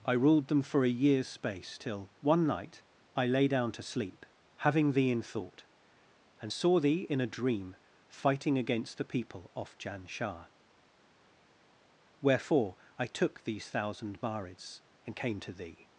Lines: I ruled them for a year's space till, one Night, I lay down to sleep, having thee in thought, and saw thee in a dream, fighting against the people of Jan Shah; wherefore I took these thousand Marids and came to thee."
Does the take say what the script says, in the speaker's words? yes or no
no